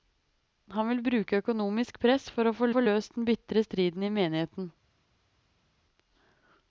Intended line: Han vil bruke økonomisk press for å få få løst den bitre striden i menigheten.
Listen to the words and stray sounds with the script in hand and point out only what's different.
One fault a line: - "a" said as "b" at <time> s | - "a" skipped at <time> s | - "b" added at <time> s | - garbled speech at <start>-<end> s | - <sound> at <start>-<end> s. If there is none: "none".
none